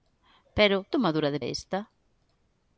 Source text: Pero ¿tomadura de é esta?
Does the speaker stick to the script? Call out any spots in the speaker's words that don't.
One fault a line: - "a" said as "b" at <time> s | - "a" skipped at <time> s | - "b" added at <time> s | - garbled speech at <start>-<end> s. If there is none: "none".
none